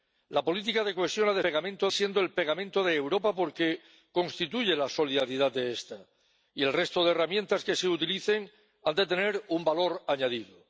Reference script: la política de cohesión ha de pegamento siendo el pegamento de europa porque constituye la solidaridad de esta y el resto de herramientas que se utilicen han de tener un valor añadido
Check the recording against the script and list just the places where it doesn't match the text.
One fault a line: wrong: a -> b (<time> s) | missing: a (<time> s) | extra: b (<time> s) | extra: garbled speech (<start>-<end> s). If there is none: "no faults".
no faults